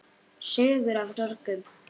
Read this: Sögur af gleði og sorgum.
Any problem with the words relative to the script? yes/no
yes